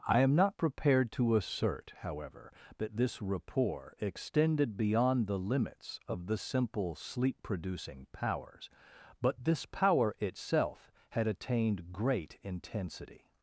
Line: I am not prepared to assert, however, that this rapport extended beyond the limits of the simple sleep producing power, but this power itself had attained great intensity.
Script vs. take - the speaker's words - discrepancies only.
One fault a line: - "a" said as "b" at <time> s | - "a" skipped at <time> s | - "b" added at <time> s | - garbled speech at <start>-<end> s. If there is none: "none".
- "power" said as "powers" at 8.1 s